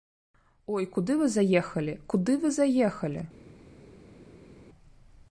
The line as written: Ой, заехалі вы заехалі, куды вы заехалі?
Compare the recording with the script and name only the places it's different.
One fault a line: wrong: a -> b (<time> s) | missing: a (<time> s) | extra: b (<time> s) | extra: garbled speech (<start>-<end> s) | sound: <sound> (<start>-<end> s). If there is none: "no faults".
wrong: заехалі -> куды (0.9 s)